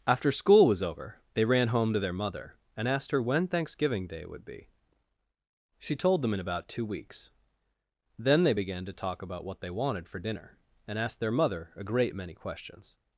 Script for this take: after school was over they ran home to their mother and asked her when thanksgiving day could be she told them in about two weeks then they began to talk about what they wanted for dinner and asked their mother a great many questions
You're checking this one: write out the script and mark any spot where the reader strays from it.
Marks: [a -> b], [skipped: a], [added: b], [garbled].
after school was over they ran home to their mother and asked her when thanksgiving day [could -> would] be she told them in about two weeks then they began to talk about what they wanted for dinner and asked their mother a great many questions